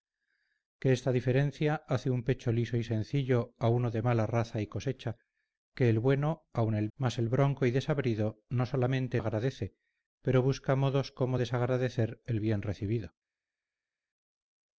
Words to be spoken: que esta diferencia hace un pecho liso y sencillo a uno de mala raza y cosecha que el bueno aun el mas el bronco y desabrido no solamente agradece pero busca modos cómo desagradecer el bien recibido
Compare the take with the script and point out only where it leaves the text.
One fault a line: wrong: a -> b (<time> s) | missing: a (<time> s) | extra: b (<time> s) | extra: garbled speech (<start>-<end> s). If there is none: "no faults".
no faults